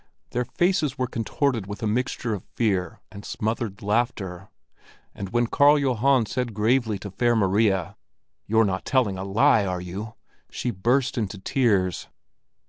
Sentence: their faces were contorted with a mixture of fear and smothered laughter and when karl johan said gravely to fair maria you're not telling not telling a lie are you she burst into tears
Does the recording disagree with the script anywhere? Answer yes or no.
yes